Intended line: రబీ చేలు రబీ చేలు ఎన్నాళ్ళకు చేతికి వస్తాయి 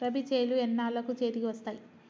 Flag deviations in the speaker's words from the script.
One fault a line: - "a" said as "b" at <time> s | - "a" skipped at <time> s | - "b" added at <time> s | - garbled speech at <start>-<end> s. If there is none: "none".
- "రబీ చేలు" skipped at 0.6 s